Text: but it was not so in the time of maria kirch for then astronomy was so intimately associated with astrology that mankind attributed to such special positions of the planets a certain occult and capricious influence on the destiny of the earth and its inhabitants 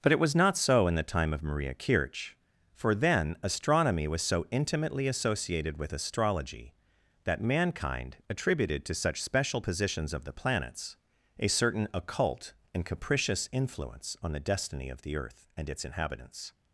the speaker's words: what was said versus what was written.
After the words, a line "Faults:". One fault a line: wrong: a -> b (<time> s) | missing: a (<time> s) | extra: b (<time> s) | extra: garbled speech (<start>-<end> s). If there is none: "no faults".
but it was not so in the time of maria kirch for then astronomy was so intimately associated with astrology that mankind attributed to such special positions of the planets a certain occult and capricious influence on the destiny of the earth and its inhabitants
Faults:
no faults